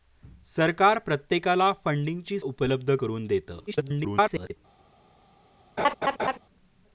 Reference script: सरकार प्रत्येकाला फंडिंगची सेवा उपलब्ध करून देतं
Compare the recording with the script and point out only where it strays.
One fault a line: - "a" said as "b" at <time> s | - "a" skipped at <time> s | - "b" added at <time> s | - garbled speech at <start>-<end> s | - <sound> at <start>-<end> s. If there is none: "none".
- "सेवा" skipped at 2.4 s
- garbled speech at 3.7-4.6 s
- laugh at 5.8-6.4 s